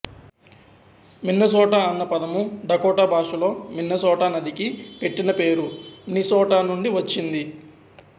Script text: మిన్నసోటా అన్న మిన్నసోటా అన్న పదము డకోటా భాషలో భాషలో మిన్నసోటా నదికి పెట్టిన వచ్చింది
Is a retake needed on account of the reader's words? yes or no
yes